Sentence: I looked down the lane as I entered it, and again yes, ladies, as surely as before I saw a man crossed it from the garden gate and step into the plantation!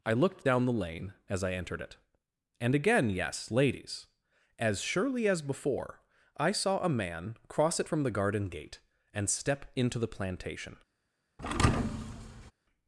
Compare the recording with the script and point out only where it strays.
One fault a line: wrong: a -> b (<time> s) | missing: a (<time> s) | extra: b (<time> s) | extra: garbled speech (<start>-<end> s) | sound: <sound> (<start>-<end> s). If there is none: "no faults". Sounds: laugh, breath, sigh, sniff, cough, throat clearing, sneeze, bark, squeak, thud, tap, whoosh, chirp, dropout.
wrong: crossed -> cross (7.5 s)
sound: thud (11.4-12.5 s)